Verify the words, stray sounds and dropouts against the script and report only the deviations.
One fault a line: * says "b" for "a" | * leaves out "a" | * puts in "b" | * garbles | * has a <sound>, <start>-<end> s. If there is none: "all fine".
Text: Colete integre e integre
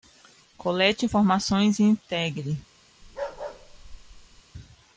* says "informações" for "integre"
* has a bark, 3.0-4.4 s